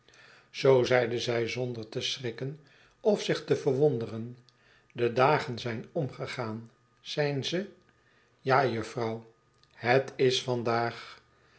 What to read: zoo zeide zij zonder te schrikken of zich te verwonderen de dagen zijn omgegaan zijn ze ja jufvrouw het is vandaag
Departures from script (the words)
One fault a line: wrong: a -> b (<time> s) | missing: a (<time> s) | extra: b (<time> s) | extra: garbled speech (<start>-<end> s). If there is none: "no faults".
no faults